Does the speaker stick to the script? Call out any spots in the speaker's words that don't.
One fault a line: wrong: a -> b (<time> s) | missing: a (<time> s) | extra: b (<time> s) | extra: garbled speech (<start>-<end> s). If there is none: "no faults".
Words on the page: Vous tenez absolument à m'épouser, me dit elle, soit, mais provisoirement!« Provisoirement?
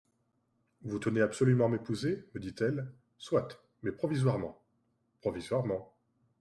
no faults